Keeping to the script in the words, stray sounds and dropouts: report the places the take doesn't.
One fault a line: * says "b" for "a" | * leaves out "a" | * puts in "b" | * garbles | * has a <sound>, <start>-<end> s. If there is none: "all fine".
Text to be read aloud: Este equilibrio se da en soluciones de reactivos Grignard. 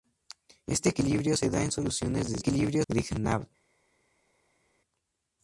* says "equilibrio" for "reactivos"